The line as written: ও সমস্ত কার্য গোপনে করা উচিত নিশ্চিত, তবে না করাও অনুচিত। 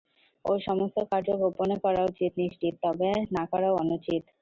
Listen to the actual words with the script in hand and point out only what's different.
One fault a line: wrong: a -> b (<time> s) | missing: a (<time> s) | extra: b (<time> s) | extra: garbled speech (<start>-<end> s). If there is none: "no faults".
no faults